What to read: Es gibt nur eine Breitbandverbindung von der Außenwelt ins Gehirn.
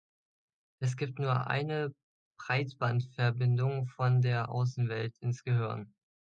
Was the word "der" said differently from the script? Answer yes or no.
no